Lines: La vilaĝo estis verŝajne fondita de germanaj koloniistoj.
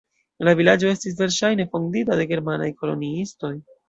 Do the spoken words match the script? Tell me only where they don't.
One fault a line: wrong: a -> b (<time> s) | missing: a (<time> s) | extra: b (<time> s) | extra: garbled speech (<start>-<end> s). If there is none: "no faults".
no faults